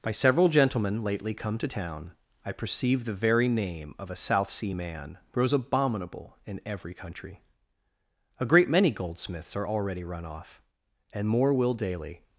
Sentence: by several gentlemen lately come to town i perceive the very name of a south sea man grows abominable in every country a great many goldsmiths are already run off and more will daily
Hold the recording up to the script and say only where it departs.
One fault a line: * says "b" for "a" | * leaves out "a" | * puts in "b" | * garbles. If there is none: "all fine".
all fine